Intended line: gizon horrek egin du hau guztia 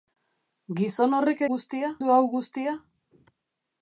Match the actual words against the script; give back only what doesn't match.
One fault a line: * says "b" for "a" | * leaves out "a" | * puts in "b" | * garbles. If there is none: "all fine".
* says "guztia" for "egin"